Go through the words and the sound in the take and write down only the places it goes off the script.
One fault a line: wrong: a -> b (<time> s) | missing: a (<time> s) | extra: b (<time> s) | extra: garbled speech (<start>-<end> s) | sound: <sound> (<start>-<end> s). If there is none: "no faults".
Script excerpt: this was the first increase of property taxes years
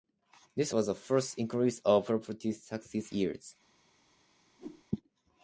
sound: whoosh (4.6-4.8 s)